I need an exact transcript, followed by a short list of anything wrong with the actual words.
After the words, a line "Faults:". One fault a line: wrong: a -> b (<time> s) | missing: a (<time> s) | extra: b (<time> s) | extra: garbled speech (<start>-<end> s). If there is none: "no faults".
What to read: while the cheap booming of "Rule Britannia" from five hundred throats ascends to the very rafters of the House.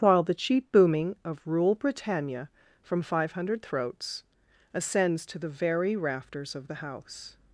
while the cheap booming of "Rule Britannia" from five hundred throats ascends to the very rafters of the House.
Faults:
no faults